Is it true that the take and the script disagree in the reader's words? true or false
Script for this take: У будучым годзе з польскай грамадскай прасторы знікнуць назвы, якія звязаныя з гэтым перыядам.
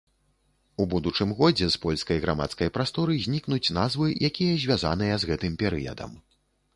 false